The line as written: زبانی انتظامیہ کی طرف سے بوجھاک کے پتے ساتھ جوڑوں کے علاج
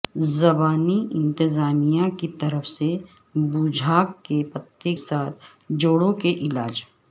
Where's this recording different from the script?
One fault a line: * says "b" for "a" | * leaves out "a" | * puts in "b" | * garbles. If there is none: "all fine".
all fine